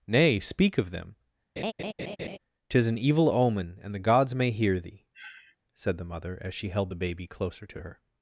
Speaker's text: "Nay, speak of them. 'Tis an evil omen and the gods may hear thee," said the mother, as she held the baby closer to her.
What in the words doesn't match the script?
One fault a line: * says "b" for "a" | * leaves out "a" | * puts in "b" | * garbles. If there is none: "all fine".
all fine